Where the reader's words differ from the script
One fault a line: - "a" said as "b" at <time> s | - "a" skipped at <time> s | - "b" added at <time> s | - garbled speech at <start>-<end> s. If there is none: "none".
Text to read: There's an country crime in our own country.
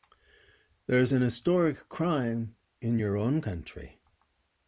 - "country" said as "historic" at 1.2 s
- "our" said as "your" at 3.0 s